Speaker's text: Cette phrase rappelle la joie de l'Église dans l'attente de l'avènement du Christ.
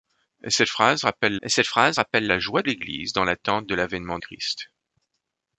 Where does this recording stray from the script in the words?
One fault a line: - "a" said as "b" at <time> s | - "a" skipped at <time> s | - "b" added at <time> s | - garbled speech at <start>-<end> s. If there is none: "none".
- "cette phrase rappelle" added at 1.5 s
- "de" skipped at 2.6 s
- "du" skipped at 4.2 s